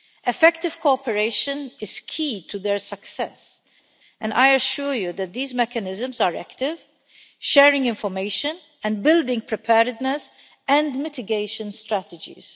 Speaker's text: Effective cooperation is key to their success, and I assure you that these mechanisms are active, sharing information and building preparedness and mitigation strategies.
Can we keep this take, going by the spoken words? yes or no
yes